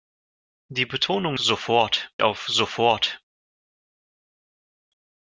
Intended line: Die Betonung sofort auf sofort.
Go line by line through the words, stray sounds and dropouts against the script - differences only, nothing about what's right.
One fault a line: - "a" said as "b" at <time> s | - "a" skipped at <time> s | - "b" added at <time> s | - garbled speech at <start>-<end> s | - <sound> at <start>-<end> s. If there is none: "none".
none